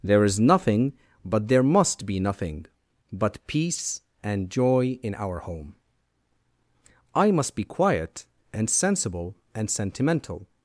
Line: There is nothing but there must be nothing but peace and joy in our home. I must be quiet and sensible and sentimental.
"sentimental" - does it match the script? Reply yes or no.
yes